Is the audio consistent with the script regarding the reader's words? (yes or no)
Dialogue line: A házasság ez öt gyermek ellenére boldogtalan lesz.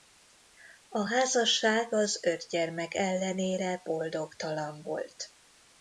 no